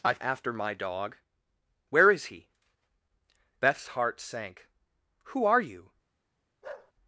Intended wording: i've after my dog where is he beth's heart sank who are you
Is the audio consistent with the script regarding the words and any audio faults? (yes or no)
no